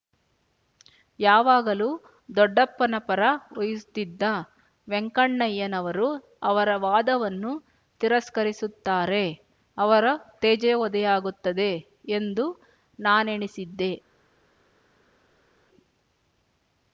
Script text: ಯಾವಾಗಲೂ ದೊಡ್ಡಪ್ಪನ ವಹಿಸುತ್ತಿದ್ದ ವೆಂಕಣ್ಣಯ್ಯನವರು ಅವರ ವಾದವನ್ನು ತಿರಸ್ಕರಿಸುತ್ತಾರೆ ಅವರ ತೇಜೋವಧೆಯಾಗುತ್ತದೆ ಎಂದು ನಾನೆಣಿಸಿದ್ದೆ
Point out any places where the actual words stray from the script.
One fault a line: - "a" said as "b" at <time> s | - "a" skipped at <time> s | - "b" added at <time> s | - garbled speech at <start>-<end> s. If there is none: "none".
- "ಪರ" added at 3.0 s